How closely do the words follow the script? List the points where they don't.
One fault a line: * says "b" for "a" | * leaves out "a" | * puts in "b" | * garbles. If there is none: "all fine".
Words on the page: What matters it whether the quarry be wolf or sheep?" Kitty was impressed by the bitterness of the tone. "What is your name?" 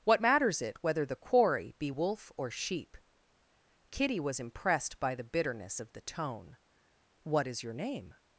all fine